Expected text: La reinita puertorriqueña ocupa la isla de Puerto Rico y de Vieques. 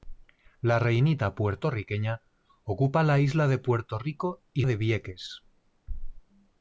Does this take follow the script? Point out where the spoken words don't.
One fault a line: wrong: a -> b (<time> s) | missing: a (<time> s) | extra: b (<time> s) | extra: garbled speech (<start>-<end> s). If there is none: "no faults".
no faults